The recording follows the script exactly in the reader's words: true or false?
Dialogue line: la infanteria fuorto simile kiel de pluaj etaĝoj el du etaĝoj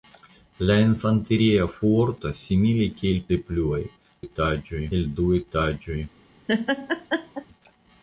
true